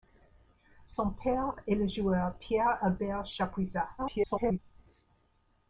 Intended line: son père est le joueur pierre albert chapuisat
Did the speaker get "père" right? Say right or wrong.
right